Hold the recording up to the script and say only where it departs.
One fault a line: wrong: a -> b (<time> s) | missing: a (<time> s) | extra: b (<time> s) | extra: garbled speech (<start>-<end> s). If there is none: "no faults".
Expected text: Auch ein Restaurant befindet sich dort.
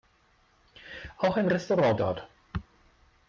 missing: befindet sich (2.0 s)